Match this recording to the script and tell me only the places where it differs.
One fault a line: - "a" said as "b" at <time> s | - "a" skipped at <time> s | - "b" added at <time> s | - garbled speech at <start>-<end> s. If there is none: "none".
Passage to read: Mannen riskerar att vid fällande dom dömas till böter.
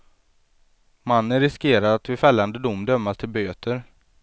none